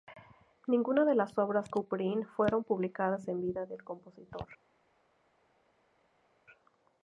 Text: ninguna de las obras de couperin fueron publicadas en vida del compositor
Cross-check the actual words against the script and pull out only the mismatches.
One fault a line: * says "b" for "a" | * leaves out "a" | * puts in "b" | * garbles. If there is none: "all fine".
* leaves out "de"